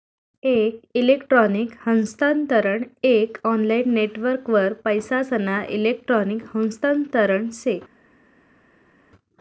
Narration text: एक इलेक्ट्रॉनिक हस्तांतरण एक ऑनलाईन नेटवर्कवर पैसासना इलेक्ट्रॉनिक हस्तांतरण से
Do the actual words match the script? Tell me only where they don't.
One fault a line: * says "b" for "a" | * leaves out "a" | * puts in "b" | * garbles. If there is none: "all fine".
all fine